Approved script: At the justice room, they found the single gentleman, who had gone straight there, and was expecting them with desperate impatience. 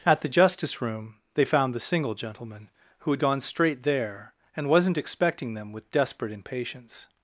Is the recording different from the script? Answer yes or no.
yes